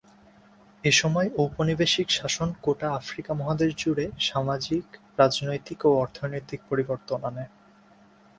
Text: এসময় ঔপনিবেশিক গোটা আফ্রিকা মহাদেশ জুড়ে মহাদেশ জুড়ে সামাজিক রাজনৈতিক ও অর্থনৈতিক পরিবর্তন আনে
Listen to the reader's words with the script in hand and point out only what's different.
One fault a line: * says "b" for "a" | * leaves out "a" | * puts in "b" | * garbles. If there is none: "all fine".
* puts in "শাসন"
* leaves out "মহাদেশ জুড়ে"